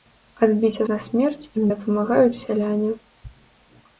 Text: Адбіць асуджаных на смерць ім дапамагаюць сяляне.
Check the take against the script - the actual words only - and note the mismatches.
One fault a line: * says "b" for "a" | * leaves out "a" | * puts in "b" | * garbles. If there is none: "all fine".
* leaves out "асуджаных"